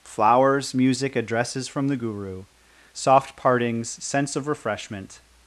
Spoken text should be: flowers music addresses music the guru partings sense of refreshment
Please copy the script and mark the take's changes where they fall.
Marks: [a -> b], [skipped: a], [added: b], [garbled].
flowers music addresses [music -> from] the guru [added: soft] partings sense of refreshment